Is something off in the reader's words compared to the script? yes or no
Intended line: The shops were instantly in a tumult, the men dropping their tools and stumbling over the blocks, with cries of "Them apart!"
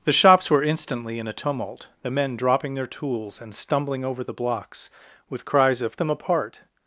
no